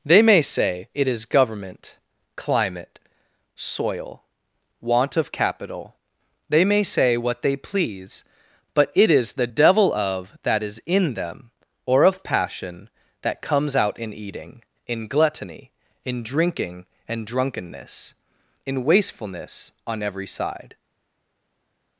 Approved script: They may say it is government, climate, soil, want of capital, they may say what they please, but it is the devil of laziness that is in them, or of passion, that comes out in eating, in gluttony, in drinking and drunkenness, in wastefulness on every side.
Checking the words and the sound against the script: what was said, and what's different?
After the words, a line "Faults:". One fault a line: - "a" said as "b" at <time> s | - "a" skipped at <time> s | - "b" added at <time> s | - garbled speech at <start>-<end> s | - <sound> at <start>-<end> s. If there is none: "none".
They may say it is government, climate, soil, want of capital, they may say what they please, but it is the devil of that is in them, or of passion, that comes out in eating, in gluttony, in drinking and drunkenness, in wastefulness on every side.
Faults:
- "laziness" skipped at 10.4 s